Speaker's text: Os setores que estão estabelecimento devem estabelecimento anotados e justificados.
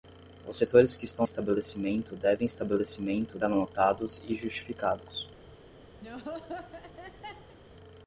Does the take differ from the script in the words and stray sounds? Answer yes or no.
yes